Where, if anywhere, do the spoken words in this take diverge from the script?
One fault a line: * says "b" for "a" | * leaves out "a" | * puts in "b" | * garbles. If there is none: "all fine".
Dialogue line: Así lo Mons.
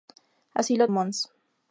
all fine